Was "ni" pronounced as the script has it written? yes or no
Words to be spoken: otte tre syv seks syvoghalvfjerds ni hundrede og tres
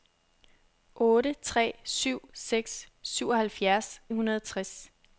no